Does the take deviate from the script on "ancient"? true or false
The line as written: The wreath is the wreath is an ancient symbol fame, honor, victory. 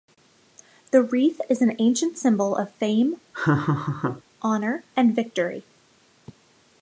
false